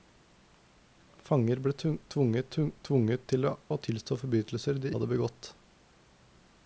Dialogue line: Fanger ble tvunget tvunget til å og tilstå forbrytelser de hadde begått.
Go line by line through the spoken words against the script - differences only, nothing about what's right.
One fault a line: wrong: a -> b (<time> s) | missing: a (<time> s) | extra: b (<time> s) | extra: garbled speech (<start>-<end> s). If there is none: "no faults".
no faults